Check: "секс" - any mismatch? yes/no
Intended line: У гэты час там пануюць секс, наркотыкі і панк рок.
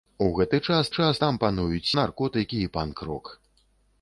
yes